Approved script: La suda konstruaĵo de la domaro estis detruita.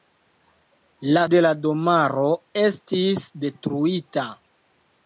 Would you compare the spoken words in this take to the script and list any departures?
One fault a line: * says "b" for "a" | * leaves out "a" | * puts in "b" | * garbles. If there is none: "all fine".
* leaves out "suda konstruaĵo"